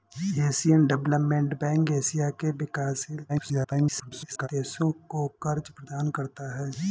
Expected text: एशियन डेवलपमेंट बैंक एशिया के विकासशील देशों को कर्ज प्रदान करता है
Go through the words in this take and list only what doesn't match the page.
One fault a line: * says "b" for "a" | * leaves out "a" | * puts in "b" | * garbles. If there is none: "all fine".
* garbles